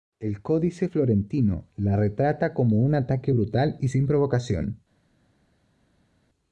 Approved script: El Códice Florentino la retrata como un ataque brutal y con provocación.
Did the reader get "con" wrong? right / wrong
wrong